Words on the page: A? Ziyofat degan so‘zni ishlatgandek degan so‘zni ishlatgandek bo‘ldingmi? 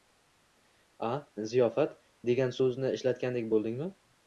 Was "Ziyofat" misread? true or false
false